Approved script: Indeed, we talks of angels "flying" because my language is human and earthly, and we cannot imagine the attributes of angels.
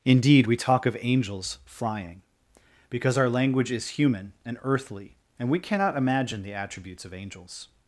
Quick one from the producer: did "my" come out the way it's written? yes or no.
no